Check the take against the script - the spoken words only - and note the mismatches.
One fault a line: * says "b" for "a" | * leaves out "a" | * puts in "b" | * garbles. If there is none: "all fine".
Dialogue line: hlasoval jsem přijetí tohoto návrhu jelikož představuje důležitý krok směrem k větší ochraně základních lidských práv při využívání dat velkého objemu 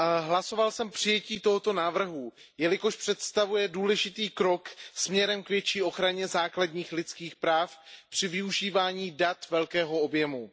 all fine